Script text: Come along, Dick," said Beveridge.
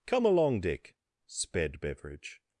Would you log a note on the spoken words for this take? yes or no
yes